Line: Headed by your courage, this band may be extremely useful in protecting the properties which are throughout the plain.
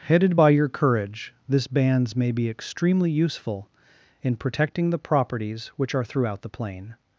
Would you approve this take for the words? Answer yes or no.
no